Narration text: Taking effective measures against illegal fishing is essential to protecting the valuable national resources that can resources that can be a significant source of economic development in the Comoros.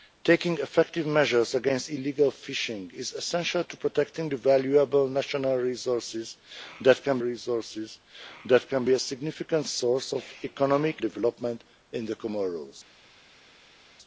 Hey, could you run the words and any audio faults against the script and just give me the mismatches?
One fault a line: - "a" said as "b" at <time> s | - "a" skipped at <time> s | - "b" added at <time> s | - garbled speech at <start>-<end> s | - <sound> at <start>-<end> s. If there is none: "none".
none